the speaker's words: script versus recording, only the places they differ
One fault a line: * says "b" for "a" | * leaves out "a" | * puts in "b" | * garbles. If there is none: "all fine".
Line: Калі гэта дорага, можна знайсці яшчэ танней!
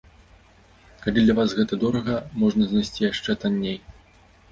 * puts in "для вас"